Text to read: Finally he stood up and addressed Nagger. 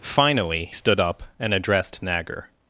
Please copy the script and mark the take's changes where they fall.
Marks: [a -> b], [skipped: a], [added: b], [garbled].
Finally [skipped: he] stood up and addressed Nagger.